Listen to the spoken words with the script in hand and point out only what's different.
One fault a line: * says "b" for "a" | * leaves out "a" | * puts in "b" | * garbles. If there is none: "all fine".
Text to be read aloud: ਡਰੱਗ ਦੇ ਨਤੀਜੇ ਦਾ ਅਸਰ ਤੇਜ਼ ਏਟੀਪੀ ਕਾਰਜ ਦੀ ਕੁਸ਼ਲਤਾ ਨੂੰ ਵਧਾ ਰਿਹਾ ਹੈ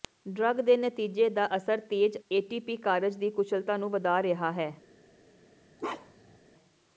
all fine